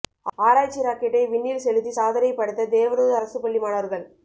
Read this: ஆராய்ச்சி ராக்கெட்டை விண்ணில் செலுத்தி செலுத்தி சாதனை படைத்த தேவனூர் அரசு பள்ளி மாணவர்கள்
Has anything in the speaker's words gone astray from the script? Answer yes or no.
yes